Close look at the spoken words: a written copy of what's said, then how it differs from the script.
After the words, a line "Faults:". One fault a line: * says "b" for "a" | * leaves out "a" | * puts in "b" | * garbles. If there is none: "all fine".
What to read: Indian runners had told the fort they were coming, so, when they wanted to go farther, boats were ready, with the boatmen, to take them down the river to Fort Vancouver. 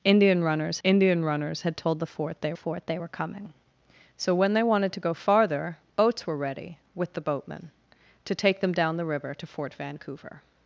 Indian runners indian runners had told the fort they fort they were coming, so, when they wanted to go farther, boats were ready, with the boatmen, to take them down the river to Fort Vancouver.
Faults:
* puts in "indian runners"
* puts in "fort they"